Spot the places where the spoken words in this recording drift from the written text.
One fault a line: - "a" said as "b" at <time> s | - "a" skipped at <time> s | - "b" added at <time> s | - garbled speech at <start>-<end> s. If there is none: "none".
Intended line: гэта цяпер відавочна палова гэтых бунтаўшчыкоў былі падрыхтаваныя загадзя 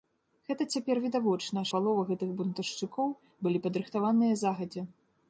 none